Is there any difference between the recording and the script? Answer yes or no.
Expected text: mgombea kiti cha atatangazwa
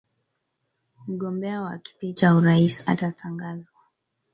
yes